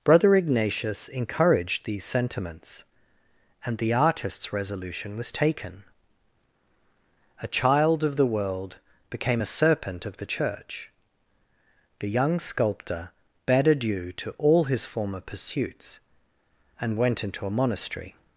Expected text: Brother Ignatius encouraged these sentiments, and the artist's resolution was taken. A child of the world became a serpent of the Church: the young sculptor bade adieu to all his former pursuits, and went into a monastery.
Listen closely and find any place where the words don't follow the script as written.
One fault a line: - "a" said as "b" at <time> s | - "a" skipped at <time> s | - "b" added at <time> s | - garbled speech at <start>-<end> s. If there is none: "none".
none